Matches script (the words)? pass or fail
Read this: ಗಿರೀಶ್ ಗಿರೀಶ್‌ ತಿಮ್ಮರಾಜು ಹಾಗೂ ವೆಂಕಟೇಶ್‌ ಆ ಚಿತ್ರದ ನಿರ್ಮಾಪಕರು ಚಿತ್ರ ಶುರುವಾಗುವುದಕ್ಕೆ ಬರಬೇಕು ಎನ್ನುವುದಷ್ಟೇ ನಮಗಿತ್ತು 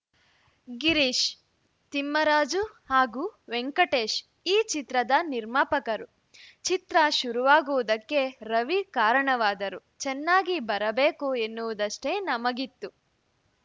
fail